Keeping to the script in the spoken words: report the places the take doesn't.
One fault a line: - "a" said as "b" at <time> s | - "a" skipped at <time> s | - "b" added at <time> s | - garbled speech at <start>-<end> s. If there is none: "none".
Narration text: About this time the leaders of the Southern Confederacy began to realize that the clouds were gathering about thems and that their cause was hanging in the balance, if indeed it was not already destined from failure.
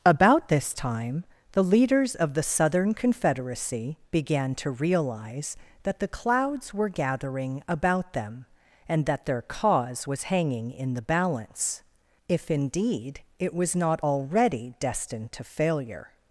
- "thems" said as "them" at 8.1 s
- "from" said as "to" at 15.3 s